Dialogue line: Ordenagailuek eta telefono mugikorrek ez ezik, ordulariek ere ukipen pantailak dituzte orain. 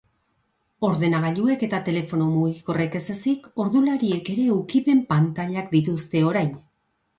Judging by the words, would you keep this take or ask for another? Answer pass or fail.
pass